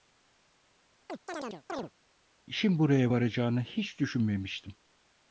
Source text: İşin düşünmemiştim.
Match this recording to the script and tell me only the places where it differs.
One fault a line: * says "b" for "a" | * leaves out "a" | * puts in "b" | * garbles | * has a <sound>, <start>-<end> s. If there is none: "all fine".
* has a chirp, 1.1-1.9 s
* puts in "buraya varacağını hiç"